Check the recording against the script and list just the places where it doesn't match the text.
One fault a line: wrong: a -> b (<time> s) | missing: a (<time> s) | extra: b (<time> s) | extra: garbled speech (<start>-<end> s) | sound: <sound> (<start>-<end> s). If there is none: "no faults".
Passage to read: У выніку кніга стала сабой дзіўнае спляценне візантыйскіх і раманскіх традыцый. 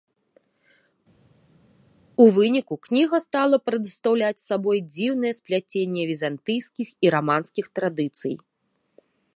extra: прадстаўляць (3.7 s)